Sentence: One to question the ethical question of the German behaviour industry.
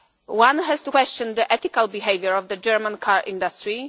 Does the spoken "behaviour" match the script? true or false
false